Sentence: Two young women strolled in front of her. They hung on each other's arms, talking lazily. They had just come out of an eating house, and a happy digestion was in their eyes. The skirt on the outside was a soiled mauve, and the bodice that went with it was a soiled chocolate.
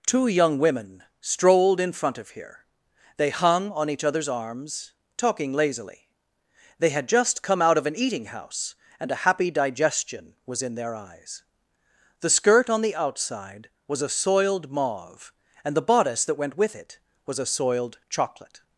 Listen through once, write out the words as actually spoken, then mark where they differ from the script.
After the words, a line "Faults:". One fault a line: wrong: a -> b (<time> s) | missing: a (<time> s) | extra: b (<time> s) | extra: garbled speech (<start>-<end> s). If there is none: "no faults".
Two young women strolled in front of here. They hung on each other's arms, talking lazily. They had just come out of an eating house, and a happy digestion was in their eyes. The skirt on the outside was a soiled mauve, and the bodice that went with it was a soiled chocolate.
Faults:
wrong: her -> here (2.3 s)